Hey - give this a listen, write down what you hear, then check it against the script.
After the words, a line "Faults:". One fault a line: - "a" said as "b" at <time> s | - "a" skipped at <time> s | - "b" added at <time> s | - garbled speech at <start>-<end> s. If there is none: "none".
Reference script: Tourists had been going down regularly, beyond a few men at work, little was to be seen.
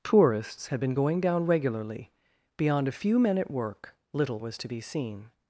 Tourists had been going down regularly, beyond a few men at work, little was to be seen.
Faults:
none